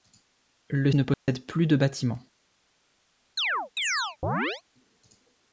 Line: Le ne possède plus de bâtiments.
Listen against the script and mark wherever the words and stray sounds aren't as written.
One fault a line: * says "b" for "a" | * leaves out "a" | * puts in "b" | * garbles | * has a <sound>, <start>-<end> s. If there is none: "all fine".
* has a dropout, 1.1-1.3 s
* has a chirp, 3.4-4.6 s